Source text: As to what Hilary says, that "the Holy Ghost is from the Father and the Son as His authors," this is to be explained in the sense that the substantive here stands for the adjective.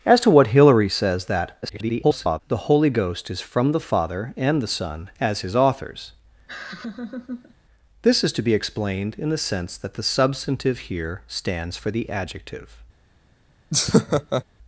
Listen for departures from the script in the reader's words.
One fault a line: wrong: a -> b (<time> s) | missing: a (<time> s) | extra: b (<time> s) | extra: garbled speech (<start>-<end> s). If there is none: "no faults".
extra: garbled speech (1.6-2.4 s)